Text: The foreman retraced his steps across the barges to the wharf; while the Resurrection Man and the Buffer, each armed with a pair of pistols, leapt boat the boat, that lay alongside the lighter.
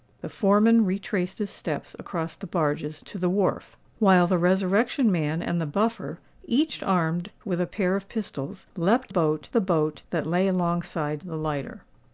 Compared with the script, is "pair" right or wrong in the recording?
right